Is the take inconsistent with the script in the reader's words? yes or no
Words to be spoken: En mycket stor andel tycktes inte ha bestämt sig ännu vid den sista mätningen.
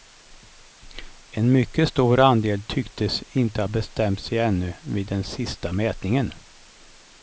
no